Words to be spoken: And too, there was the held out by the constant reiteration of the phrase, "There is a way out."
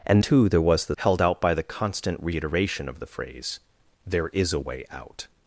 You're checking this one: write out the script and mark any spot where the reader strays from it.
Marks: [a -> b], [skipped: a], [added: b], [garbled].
And too, there was the held out by the constant reiteration of the phrase, "There is a way out."